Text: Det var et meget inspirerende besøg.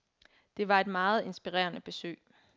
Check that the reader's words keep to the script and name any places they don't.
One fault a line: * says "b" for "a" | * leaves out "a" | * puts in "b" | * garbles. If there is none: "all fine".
all fine